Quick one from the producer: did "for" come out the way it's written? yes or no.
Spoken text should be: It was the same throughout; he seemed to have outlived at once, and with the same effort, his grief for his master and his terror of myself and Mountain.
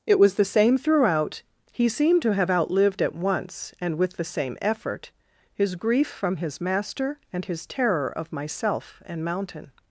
no